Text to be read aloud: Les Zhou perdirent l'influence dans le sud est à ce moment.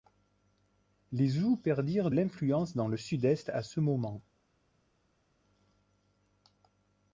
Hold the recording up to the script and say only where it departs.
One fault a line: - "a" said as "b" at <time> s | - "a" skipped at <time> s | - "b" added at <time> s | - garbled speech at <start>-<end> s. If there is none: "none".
none